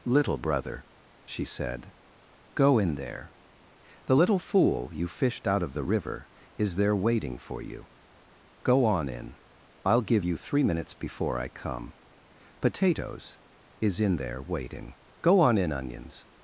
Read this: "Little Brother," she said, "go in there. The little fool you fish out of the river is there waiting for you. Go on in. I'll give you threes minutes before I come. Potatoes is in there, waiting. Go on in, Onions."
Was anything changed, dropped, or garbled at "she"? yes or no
no